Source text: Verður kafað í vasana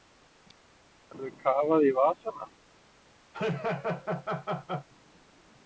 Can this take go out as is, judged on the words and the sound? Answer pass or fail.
fail